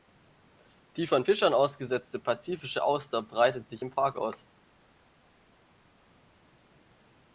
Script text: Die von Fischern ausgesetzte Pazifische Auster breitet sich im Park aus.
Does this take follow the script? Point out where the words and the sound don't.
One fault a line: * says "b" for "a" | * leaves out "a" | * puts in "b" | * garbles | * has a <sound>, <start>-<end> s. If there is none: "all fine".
all fine